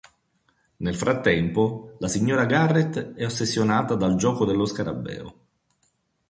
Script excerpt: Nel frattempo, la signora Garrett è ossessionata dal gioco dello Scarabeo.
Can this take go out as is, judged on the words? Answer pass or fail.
pass